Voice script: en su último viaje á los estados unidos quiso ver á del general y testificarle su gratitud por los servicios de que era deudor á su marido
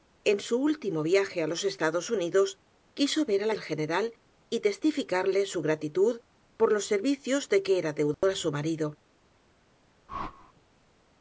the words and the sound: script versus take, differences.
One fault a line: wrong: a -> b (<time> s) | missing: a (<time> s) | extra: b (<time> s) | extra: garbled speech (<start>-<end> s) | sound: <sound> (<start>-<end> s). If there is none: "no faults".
sound: dropout (8.1-8.2 s)
sound: whoosh (10.1-10.5 s)